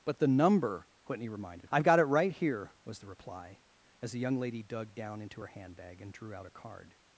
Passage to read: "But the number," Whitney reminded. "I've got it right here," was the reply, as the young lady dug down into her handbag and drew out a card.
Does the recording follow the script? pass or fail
pass